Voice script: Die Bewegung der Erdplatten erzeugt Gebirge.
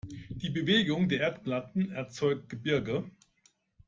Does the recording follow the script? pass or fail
pass